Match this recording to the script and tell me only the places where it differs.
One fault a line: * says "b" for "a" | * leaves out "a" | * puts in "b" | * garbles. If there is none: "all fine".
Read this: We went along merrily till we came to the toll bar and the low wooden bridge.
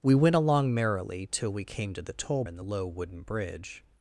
* leaves out "bar"